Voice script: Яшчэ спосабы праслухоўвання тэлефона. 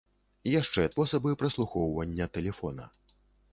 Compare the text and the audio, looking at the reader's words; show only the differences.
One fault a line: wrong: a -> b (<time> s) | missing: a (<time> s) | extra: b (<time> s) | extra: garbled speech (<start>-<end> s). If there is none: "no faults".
no faults